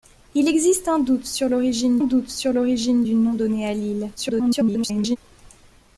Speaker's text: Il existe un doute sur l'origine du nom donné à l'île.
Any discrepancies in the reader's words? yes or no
yes